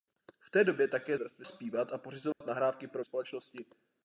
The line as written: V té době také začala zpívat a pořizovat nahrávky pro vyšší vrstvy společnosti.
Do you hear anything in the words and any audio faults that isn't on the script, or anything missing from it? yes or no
yes